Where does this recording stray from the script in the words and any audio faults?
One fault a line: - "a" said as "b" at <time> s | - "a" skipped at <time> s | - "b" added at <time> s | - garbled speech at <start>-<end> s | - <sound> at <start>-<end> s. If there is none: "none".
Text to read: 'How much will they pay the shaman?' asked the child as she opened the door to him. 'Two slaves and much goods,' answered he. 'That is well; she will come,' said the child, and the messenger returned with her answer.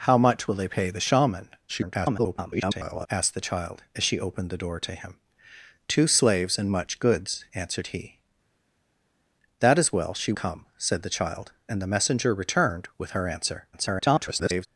- garbled speech at 1.7-3.1 s
- "will" skipped at 10.3 s
- garbled speech at 13.7-14.7 s